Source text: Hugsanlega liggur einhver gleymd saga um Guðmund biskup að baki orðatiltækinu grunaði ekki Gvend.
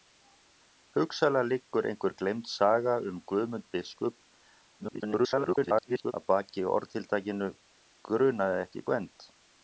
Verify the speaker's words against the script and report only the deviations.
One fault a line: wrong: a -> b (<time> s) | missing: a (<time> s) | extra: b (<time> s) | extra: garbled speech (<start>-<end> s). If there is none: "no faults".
extra: garbled speech (4.8-6.1 s)